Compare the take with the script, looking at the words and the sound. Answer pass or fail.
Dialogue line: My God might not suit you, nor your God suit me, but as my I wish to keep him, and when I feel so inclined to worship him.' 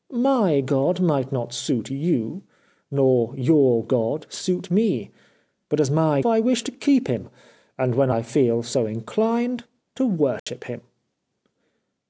fail